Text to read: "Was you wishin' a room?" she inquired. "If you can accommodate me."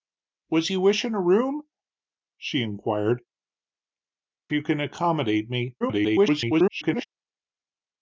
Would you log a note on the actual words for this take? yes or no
yes